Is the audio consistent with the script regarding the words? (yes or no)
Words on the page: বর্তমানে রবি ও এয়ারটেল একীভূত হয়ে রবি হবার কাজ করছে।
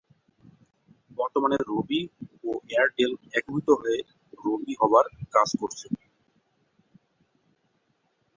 yes